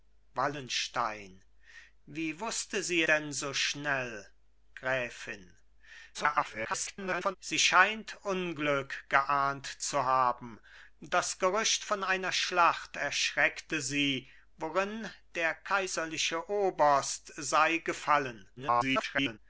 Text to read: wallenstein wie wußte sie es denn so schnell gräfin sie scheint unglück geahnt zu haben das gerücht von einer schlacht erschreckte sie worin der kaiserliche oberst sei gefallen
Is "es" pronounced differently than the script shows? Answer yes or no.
yes